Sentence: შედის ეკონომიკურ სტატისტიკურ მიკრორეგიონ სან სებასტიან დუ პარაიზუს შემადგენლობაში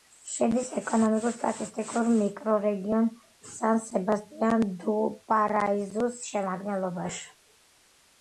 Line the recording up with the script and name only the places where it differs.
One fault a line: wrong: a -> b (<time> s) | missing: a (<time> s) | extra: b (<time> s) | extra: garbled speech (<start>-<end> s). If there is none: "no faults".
no faults